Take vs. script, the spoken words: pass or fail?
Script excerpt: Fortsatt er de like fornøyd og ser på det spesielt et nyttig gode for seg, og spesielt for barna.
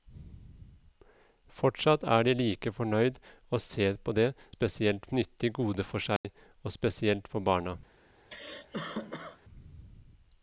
pass